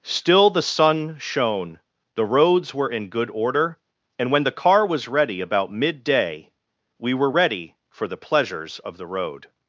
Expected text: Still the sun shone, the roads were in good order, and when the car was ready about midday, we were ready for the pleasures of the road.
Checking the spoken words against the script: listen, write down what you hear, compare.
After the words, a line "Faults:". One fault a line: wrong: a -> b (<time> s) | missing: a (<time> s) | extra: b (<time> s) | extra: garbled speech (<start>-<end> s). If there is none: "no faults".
Still the sun shone, the roads were in good order, and when the car was ready about midday, we were ready for the pleasures of the road.
Faults:
no faults